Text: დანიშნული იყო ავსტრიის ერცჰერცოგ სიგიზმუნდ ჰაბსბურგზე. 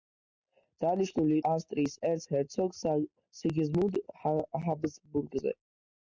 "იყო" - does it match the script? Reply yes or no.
no